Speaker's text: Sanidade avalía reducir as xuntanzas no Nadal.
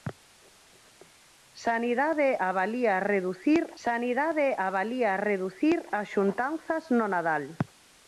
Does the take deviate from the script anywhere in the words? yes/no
yes